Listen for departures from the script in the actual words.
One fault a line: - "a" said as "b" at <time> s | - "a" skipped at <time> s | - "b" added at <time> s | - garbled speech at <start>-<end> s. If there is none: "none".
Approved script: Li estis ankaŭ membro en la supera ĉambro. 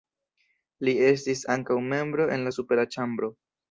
none